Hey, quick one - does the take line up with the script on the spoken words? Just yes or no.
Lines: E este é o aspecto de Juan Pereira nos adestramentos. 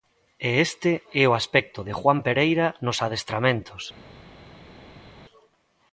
yes